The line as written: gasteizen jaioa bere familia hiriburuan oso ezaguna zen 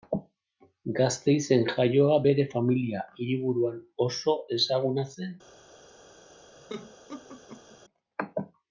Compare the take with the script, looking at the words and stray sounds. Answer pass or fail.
fail